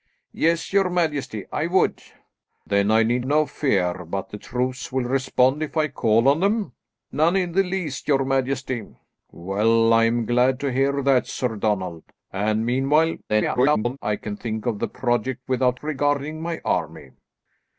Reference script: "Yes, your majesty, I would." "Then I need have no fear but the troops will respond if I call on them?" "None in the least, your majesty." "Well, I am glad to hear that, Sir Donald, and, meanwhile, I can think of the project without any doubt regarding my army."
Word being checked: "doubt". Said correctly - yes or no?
no